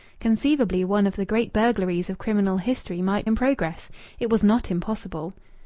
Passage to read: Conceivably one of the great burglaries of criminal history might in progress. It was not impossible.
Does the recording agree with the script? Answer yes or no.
yes